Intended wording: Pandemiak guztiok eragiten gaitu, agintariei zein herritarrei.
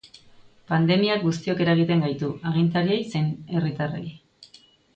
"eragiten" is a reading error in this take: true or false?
false